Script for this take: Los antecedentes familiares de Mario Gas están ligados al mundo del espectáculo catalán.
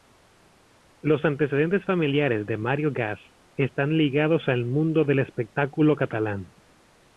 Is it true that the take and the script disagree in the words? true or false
false